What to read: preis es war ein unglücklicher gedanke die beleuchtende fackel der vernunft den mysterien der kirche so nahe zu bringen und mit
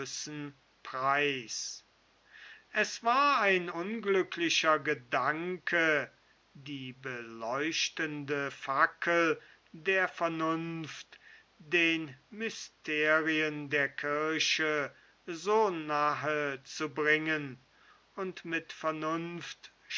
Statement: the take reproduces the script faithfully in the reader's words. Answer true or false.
true